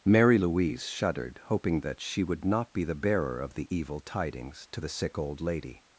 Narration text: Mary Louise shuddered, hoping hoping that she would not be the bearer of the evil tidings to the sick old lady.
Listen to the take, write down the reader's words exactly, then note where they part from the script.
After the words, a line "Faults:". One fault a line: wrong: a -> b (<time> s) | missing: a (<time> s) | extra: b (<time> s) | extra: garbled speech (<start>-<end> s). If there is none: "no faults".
Mary Louise shuddered, hoping that she would not be the bearer of the evil tidings to the sick old lady.
Faults:
missing: hoping (1.8 s)